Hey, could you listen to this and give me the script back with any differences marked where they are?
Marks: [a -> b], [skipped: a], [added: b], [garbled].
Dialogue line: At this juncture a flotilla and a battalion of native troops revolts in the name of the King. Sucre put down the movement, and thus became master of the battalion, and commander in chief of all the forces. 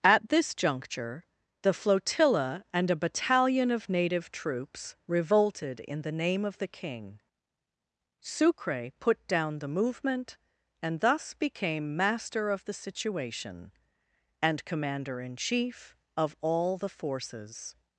At this juncture [a -> the] flotilla and a battalion of native troops [revolts -> revolted] in the name of the King. Sucre put down the movement, and thus became master of the [battalion, -> situation] and commander in chief of all the forces.